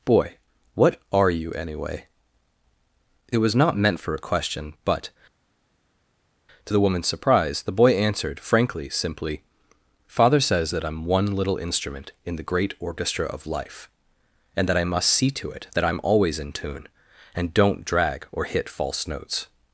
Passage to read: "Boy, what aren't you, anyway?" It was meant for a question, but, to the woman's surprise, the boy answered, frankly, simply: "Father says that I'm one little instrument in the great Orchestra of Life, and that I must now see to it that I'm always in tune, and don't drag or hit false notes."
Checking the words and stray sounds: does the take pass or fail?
fail